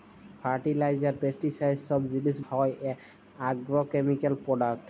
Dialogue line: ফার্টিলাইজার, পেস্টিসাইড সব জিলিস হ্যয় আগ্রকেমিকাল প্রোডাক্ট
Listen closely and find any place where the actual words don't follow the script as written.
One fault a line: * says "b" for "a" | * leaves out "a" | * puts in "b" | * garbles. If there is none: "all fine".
all fine